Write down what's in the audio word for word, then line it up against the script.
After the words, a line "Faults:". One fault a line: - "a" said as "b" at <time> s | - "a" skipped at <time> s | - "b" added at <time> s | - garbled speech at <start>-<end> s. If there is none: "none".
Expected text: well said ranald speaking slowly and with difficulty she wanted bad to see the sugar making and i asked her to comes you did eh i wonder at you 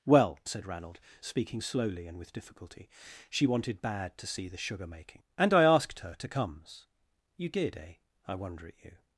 well said ranald speaking slowly and with difficulty she wanted bad to see the sugar making and i asked her to comes you did eh i wonder at you
Faults:
none